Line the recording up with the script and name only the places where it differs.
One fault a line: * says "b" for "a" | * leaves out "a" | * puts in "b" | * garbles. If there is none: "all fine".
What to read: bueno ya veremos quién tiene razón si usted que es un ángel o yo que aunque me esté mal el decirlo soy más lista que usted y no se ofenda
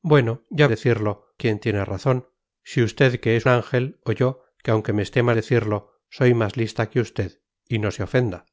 * says "decirlo" for "veremos"
* leaves out "un"
* leaves out "el"